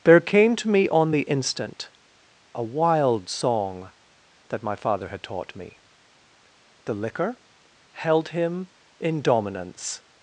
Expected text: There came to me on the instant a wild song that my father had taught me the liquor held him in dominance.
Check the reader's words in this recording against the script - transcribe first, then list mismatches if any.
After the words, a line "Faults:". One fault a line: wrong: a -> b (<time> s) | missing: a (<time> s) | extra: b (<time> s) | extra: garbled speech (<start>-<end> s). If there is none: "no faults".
There came to me on the instant a wild song that my father had taught me the liquor held him in dominance.
Faults:
no faults